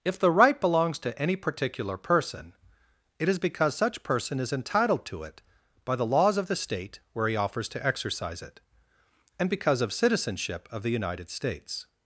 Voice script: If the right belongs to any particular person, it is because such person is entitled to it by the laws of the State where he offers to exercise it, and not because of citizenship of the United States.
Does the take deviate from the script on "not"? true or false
true